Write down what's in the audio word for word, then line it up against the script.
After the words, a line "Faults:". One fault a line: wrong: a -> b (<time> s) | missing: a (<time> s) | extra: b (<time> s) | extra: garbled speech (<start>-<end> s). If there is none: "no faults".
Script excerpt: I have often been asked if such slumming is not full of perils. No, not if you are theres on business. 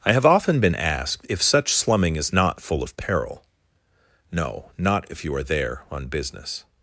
I have often been asked if such slumming is not full of peril. No, not if you are there on business.
Faults:
wrong: perils -> peril (3.0 s)
wrong: theres -> there (5.4 s)